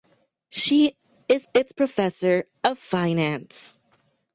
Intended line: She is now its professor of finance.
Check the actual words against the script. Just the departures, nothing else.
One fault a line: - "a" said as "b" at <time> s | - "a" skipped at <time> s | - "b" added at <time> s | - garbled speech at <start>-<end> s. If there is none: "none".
- "now" skipped at 1.5 s